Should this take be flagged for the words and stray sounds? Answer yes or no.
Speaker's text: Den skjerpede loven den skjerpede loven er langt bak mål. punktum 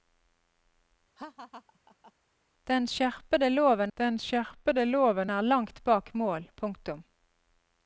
yes